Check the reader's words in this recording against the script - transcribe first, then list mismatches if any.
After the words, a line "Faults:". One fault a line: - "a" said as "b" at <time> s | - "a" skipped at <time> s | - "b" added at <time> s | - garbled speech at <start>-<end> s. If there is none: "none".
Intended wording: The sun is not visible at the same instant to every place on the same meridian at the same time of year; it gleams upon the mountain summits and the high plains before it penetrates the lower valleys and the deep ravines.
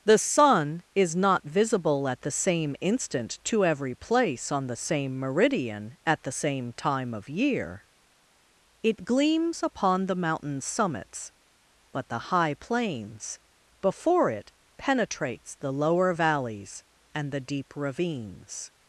The sun is not visible at the same instant to every place on the same meridian at the same time of year; it gleams upon the mountain summits but the high plains before it penetrates the lower valleys and the deep ravines.
Faults:
- "and" said as "but" at 11.9 s